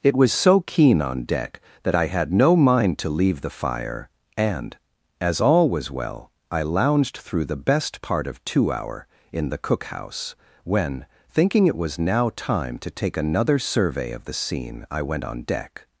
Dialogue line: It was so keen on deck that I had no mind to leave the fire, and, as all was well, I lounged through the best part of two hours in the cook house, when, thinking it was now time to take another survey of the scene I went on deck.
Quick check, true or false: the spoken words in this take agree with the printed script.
false